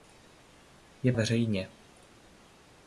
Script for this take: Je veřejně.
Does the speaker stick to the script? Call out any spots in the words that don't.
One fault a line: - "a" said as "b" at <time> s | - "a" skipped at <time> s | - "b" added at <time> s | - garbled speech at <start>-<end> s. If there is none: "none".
none